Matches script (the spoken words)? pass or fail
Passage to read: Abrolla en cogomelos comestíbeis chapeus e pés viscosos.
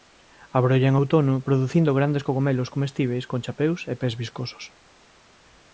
fail